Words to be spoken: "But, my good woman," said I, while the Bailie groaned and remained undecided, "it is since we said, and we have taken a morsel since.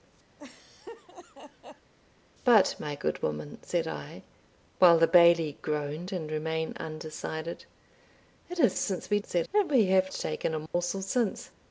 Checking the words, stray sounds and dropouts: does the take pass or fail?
fail